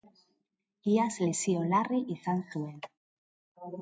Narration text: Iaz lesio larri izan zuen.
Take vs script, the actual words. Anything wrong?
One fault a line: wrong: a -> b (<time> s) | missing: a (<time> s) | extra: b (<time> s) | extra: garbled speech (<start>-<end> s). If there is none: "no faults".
no faults